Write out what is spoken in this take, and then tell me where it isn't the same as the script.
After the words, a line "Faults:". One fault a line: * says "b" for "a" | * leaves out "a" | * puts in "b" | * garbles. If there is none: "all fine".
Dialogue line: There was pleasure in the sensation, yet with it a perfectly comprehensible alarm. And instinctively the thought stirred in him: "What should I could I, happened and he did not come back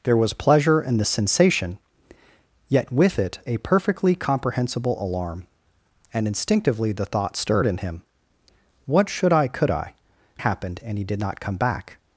There was pleasure in the sensation, yet with it a perfectly comprehensible alarm. And instinctively the thought stirred in him: "What should I could I, happened and he did not come back
Faults:
all fine